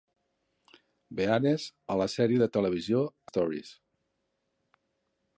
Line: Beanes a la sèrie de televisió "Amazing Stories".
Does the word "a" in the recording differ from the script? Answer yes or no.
no